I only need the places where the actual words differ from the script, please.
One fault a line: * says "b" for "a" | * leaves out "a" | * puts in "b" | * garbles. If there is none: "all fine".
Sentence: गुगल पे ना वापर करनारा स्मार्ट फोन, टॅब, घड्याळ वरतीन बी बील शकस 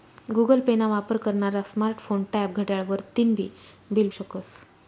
all fine